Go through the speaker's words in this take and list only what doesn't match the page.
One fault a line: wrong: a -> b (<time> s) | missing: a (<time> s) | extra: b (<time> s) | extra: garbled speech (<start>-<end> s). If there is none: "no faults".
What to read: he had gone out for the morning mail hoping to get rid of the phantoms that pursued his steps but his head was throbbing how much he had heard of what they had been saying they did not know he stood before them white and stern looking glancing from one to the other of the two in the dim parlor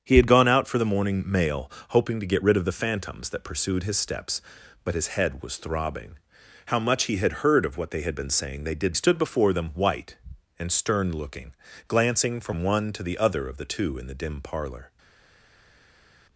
missing: not know he (8.9 s)